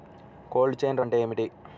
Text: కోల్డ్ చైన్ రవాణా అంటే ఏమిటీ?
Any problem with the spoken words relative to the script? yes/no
yes